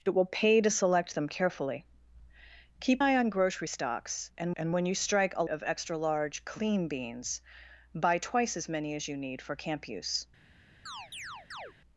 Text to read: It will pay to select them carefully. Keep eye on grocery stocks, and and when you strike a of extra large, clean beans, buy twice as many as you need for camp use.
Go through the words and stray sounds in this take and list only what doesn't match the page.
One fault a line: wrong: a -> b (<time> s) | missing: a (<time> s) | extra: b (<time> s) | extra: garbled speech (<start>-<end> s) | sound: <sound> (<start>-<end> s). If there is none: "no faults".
sound: chirp (10.9-11.7 s)